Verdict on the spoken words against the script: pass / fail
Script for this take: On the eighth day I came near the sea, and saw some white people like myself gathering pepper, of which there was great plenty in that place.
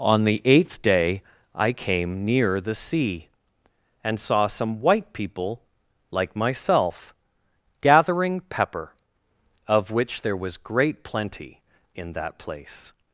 pass